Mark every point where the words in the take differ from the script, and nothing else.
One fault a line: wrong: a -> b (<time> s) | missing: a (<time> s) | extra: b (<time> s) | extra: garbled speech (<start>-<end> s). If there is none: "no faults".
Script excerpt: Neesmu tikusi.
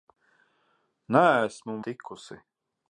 no faults